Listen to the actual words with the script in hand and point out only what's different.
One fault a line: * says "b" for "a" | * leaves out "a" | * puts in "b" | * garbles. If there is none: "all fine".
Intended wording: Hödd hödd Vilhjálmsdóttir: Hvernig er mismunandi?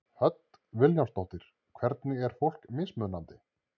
* leaves out "hödd"
* puts in "fólk"